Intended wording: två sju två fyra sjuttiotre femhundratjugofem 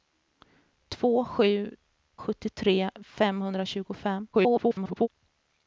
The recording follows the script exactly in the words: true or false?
false